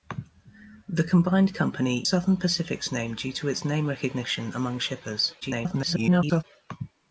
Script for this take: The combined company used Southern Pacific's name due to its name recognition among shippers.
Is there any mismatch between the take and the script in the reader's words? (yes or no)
yes